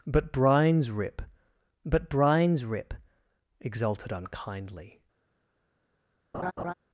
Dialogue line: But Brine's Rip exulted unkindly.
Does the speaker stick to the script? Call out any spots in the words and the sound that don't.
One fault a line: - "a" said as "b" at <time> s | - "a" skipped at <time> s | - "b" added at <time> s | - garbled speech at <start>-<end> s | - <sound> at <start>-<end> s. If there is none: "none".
- "but Brine's Rip" added at 1.9 s
- laugh at 6.3-6.7 s